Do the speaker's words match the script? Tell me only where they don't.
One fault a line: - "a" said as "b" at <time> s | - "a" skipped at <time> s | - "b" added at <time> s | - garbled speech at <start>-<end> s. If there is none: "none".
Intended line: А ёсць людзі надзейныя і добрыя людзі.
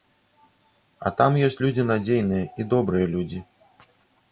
- "там" added at 1.2 s